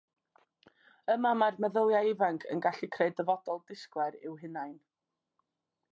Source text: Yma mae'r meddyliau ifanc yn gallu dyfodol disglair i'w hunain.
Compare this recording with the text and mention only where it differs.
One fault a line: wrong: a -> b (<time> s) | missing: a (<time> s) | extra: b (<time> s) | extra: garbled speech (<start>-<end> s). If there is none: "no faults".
extra: creu (3.0 s)